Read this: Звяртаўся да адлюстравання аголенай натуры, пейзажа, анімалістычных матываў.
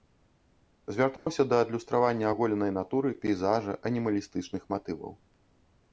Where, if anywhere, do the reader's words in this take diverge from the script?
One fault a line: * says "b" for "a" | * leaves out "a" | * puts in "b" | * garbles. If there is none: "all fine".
all fine